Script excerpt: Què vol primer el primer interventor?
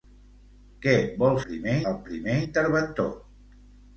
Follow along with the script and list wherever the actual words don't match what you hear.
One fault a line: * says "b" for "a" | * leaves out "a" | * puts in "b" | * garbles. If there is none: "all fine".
all fine